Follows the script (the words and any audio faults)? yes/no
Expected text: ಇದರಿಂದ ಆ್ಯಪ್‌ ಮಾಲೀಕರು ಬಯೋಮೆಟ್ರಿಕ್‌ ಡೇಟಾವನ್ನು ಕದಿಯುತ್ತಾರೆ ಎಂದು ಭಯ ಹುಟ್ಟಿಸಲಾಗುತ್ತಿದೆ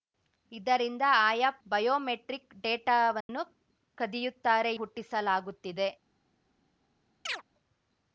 no